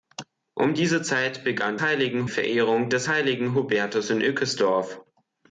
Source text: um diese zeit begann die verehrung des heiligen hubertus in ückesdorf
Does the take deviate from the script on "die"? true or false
true